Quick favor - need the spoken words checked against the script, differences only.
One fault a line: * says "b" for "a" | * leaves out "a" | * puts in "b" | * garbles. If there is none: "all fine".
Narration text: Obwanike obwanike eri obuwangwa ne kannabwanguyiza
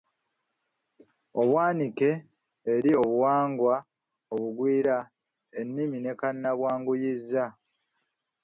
* leaves out "obwanike"
* puts in "obugwira ennimi"